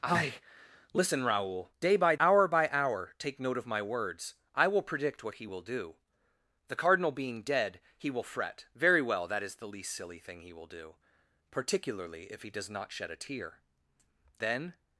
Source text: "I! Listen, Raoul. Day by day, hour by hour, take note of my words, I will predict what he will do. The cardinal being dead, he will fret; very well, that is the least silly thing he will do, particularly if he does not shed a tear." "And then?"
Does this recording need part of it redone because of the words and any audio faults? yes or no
yes